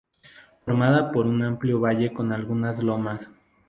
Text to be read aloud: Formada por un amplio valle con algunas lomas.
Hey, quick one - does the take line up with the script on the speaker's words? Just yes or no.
yes